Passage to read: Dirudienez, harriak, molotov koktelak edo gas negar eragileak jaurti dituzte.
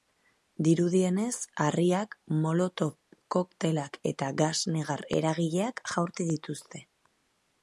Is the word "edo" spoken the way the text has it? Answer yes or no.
no